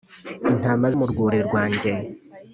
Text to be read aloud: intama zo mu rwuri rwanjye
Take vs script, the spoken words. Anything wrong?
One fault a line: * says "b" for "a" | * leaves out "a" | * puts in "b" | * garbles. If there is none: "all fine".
* leaves out "zo"